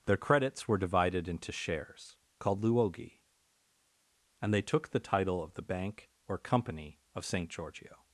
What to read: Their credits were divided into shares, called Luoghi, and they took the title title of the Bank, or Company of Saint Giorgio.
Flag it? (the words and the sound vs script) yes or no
yes